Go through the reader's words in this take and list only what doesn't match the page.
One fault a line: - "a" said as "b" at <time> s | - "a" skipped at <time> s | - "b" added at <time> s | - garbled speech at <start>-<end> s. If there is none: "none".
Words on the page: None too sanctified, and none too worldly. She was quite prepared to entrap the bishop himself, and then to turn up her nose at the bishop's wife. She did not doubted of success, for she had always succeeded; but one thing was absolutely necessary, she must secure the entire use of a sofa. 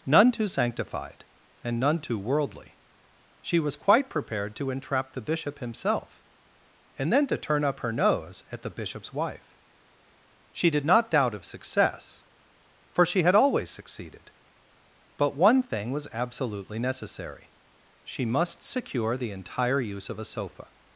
- "doubted" said as "doubt" at 11.1 s